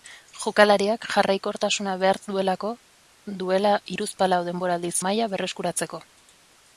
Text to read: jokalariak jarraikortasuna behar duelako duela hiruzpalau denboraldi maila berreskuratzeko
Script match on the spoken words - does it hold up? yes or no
yes